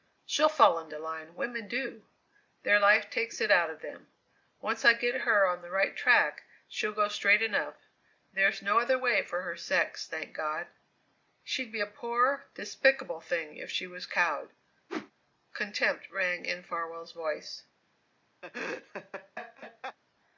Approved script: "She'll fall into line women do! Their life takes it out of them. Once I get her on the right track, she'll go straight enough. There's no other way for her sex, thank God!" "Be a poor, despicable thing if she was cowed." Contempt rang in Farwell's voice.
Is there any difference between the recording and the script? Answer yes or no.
yes